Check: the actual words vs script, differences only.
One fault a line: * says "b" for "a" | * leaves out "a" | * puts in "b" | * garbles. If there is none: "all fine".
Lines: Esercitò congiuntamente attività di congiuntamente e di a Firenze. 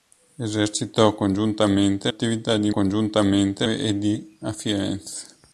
all fine